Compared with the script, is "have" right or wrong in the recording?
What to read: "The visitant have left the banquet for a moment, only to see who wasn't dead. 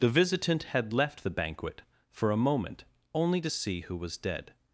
wrong